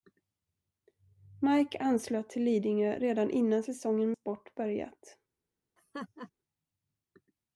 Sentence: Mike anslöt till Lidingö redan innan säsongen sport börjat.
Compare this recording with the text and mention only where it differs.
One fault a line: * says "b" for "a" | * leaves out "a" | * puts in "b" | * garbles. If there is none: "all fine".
all fine